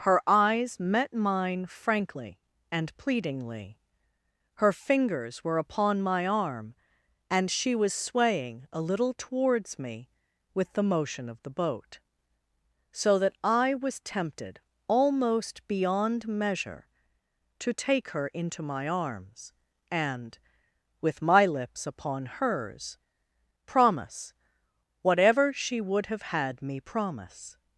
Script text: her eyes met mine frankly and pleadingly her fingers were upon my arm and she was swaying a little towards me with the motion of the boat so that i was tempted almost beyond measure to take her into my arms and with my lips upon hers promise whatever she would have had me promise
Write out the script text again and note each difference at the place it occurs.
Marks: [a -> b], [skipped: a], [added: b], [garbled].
her eyes met mine frankly and pleadingly her fingers were upon my arm and she was swaying a little towards me with the motion of the boat so that i was tempted almost beyond measure to take her into my arms and with my lips upon hers promise whatever she would have had me promise